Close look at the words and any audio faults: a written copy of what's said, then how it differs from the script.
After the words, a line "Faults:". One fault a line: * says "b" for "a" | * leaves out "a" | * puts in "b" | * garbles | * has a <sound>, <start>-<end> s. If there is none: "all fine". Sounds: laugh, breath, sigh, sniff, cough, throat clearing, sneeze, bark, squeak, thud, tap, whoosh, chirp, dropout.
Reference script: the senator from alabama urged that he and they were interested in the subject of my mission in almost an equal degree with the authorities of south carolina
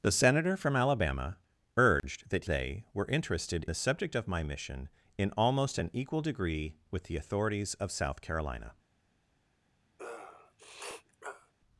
the senator from alabama urged that they were interested the subject of my mission in almost an equal degree with the authorities of south carolina
Faults:
* has a dropout, 2.0-2.0 s
* leaves out "he and"
* leaves out "in"
* has a sniff, 10.0-11.5 s